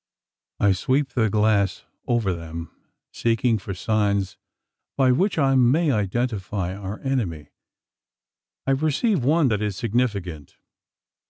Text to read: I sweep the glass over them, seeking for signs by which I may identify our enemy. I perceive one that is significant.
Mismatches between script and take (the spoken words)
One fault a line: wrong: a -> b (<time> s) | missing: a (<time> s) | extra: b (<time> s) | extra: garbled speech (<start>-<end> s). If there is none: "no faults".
no faults